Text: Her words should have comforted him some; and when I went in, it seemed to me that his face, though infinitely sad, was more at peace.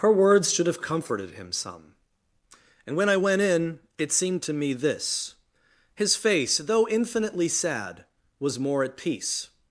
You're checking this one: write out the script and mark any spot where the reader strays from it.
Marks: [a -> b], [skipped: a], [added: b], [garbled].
Her words should have comforted him some; and when I went in, it seemed to me [that -> this] his face, though infinitely sad, was more at peace.